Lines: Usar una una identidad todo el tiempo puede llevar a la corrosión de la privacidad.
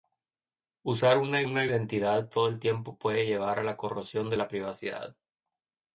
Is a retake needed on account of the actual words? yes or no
no